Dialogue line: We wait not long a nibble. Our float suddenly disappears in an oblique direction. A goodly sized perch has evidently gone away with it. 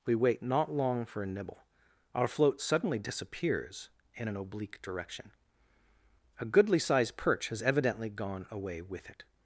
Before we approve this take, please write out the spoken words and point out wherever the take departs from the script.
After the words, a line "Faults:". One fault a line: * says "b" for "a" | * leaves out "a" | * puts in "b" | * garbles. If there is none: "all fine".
We wait not long for a nibble. Our float suddenly disappears in an oblique direction. A goodly sized perch has evidently gone away with it.
Faults:
* puts in "for"